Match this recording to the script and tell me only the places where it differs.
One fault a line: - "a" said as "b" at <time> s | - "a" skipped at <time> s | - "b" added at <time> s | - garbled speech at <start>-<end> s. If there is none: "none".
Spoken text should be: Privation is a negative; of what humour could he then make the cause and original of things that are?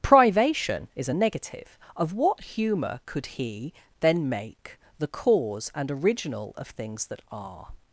none